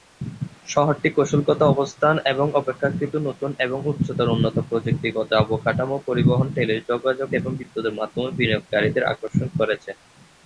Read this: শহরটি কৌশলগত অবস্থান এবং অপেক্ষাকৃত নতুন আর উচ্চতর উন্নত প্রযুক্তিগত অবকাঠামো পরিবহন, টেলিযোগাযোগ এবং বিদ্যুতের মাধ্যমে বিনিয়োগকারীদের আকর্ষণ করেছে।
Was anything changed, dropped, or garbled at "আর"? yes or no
yes